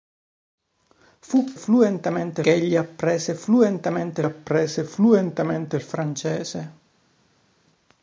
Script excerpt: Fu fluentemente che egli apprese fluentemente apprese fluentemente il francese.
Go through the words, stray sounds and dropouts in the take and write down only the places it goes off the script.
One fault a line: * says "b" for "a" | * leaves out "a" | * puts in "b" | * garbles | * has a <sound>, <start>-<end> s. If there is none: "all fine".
all fine